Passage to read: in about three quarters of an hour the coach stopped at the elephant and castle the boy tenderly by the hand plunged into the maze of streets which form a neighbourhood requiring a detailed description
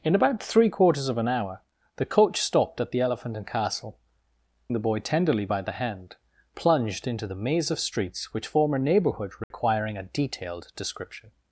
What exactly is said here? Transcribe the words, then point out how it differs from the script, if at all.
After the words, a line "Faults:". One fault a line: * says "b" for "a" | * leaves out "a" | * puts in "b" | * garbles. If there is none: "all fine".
in about three quarters of an hour the coach stopped at the elephant and castle the boy tenderly by the hand plunged into the maze of streets which form a neighbourhood requiring a detailed description
Faults:
all fine